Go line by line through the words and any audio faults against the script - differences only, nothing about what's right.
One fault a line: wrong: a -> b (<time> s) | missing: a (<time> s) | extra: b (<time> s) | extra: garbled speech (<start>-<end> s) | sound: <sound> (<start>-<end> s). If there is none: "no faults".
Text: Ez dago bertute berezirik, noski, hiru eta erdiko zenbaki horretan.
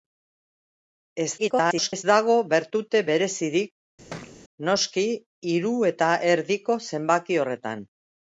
extra: garbled speech (1.4-2.0 s)
sound: thud (4.1-4.4 s)